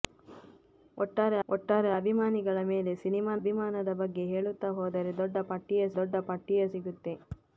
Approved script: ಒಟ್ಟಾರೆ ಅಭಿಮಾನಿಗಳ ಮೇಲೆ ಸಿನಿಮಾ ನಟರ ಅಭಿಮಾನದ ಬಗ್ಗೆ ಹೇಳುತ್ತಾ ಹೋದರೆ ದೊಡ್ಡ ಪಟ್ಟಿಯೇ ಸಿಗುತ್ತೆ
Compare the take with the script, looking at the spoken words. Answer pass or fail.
fail